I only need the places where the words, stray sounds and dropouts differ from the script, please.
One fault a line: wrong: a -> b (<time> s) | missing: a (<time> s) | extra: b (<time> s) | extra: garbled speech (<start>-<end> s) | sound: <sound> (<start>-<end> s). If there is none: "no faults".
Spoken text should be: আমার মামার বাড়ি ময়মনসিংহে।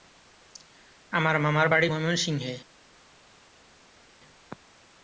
no faults